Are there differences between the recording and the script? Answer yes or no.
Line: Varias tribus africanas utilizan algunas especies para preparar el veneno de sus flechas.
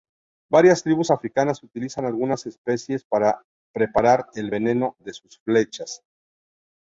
no